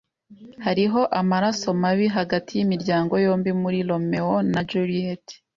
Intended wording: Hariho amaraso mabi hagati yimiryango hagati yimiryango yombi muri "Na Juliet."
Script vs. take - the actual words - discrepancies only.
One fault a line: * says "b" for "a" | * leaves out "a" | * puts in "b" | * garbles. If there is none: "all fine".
* leaves out "hagati yimiryango"
* puts in "Romeo"